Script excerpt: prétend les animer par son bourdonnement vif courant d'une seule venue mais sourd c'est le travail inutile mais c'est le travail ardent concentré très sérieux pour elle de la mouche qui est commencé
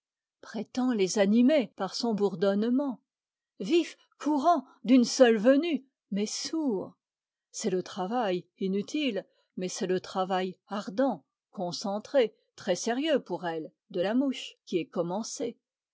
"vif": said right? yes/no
yes